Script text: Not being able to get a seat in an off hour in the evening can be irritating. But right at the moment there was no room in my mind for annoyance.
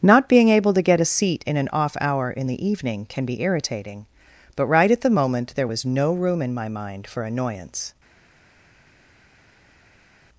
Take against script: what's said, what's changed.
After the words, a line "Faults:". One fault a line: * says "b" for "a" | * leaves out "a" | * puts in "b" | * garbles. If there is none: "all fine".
Not being able to get a seat in an off hour in the evening can be irritating. But right at the moment there was no room in my mind for annoyance.
Faults:
all fine